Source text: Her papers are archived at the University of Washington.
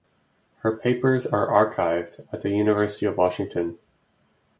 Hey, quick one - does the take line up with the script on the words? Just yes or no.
yes